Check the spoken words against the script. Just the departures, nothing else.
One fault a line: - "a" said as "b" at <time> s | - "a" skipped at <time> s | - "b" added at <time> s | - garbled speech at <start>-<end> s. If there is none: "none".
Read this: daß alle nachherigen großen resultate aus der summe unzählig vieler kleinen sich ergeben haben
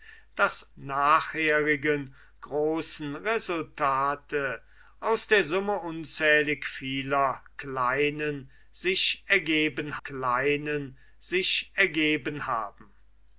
- "alle" skipped at 0.7 s
- "kleinen sich ergeben" added at 10.0 s